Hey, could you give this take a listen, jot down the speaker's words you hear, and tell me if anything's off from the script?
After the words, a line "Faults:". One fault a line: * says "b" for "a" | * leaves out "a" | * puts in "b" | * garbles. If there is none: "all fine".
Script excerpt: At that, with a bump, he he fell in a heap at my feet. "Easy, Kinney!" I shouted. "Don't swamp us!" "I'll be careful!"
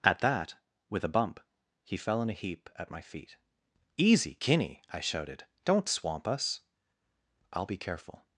At that, with a bump, he fell in a heap at my feet. "Easy, Kinney!" I shouted. "Don't swamp us!" "I'll be careful!"
Faults:
* leaves out "he"